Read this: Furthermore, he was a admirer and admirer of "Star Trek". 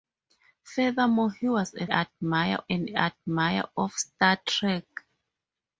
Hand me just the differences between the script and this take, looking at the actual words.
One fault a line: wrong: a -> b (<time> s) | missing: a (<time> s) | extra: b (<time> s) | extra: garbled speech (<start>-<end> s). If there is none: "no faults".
no faults